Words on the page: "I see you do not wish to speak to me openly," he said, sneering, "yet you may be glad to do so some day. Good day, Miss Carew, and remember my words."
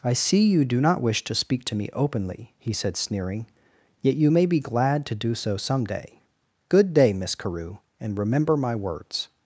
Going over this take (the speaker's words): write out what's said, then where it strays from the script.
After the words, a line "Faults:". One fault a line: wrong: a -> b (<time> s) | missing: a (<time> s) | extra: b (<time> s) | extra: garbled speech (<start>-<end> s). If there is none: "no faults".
"I see you do not wish to speak to me openly," he said, sneering, "yet you may be glad to do so some day. Good day, Miss Carew, and remember my words."
Faults:
no faults